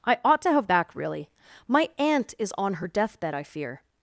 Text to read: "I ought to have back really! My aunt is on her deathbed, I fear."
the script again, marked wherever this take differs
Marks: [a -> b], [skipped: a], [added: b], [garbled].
"I ought to have back really! My aunt is on her deathbed, I fear."